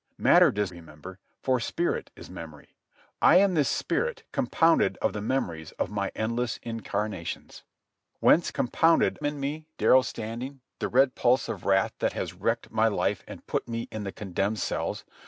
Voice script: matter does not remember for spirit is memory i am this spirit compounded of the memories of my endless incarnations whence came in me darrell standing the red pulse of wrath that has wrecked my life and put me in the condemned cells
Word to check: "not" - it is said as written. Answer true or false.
false